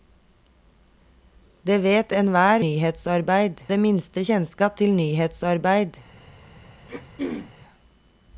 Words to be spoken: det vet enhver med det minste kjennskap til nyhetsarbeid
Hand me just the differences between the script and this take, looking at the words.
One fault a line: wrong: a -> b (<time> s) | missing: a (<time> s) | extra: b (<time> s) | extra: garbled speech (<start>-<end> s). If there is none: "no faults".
wrong: med -> nyhetsarbeid (2.6 s)